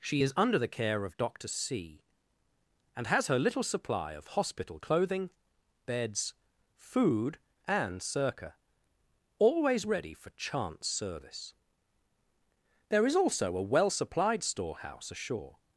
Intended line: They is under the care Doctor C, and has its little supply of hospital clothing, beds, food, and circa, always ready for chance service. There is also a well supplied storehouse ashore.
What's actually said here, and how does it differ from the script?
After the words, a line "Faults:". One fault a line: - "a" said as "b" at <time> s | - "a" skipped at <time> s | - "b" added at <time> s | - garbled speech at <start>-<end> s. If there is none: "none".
She is under the care of Doctor C, and has her little supply of hospital clothing, beds, food, and circa, always ready for chance service. There is also a well supplied storehouse ashore.
Faults:
- "They" said as "She" at 0.0 s
- "of" added at 1.0 s
- "its" said as "her" at 3.3 s